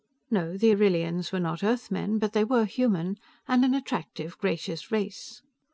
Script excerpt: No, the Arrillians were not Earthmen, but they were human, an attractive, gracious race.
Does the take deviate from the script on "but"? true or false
false